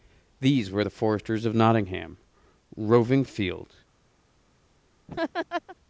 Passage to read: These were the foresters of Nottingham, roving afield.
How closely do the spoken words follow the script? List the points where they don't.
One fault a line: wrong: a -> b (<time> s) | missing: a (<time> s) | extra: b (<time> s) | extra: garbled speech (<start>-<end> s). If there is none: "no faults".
no faults